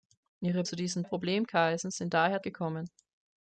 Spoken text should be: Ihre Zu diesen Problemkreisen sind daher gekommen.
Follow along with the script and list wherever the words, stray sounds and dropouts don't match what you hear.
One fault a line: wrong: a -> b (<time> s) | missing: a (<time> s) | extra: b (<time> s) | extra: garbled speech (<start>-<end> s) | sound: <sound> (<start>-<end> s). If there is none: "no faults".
no faults